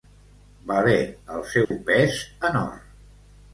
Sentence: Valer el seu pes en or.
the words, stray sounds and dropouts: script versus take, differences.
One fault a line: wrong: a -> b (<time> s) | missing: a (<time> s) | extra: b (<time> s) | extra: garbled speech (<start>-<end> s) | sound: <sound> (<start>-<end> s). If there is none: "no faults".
sound: dropout (1.6-1.7 s)